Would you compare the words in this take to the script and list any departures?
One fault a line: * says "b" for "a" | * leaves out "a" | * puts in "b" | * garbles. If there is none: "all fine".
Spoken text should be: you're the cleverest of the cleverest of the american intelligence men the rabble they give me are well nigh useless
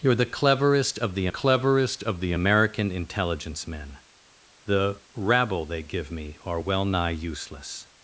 all fine